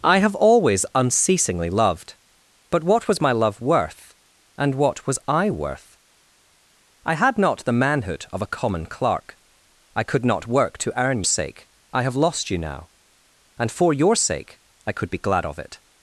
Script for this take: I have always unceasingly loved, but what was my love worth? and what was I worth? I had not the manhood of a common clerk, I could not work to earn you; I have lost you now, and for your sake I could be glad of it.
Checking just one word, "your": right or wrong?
right